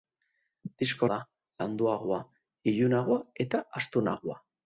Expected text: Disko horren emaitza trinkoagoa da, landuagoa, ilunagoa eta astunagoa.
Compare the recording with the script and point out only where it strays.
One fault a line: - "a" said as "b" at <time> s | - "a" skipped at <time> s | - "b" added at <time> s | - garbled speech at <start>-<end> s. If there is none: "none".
- "horren emaitza trinkoagoa" skipped at 1.1 s